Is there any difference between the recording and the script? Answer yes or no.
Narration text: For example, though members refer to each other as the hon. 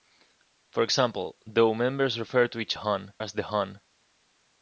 yes